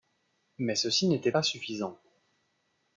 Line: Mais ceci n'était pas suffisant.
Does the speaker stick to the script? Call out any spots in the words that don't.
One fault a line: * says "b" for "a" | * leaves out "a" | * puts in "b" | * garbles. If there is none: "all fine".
all fine